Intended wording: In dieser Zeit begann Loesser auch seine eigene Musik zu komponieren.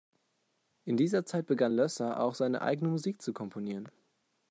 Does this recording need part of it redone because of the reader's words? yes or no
no